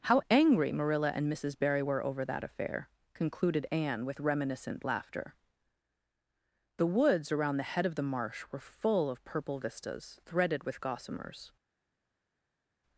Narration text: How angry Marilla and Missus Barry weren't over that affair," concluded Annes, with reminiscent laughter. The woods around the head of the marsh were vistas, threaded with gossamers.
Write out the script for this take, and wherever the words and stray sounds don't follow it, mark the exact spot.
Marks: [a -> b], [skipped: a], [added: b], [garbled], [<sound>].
How angry Marilla and Missus Barry [weren't -> were] over that affair," concluded [Annes, -> Anne] with reminiscent laughter. The woods around the head of the marsh were [added: full of purple] vistas, threaded with gossamers.